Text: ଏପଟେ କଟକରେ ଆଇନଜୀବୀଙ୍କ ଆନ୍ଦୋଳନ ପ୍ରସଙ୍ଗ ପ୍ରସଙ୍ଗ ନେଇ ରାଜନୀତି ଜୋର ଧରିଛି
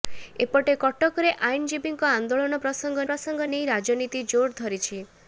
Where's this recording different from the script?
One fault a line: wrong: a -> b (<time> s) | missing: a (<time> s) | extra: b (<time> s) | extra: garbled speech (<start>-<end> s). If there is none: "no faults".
no faults